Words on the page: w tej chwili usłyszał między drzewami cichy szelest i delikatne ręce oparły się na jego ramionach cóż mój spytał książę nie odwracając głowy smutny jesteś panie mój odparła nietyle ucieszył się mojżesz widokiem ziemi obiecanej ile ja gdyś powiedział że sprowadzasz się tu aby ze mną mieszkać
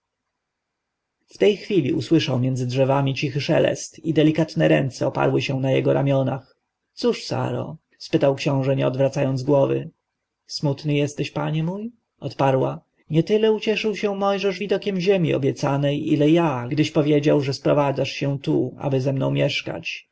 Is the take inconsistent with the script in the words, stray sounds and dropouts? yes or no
yes